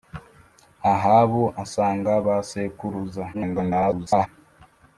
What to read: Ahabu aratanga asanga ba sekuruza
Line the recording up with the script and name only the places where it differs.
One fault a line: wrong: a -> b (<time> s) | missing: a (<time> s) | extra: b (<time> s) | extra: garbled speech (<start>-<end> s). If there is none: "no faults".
missing: aratanga (1.4 s)
extra: garbled speech (3.3-4.3 s)